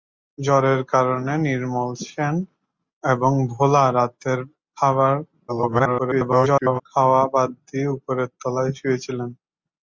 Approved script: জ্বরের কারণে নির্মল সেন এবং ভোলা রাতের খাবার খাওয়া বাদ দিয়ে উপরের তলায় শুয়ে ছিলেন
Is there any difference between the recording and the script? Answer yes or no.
yes